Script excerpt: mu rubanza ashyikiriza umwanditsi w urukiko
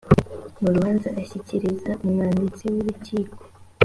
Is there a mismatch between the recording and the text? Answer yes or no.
no